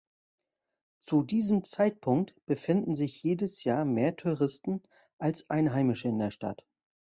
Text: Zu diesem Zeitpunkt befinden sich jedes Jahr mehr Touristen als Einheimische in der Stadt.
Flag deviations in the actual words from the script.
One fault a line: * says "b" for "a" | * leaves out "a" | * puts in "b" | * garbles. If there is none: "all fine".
all fine